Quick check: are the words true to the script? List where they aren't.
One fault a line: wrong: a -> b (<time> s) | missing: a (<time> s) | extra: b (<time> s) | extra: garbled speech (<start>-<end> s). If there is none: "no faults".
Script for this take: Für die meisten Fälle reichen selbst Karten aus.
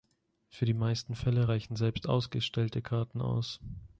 extra: ausgestellte (2.1 s)